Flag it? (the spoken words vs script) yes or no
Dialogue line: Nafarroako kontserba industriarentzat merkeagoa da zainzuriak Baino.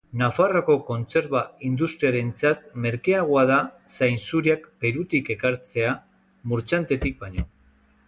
yes